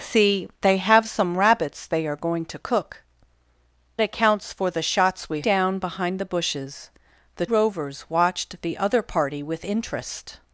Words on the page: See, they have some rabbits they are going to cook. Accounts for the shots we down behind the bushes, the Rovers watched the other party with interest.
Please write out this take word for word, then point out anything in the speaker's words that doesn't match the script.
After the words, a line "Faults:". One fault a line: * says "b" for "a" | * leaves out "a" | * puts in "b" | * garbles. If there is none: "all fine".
See, they have some rabbits they are going to cook. Accounts for the shots we down behind the bushes, the Rovers watched the other party with interest.
Faults:
all fine